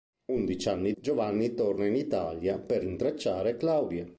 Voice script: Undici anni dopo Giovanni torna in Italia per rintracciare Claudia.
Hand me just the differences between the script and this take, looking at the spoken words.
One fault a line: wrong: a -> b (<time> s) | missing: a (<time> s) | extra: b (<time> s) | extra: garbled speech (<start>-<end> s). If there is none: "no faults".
missing: dopo (0.9 s)